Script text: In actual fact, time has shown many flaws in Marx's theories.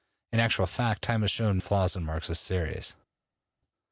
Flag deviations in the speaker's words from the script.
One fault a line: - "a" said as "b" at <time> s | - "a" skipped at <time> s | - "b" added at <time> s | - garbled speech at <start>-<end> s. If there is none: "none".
- "many" skipped at 1.6 s